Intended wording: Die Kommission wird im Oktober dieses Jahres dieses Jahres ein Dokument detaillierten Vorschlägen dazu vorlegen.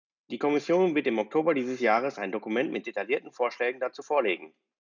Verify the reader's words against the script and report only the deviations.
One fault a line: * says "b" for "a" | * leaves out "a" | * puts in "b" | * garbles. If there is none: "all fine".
* leaves out "dieses Jahres"
* puts in "mit"